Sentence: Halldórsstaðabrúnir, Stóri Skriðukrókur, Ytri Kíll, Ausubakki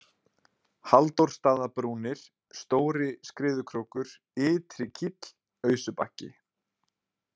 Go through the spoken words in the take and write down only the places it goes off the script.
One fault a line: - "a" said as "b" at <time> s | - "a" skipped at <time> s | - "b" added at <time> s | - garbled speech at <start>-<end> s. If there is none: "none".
none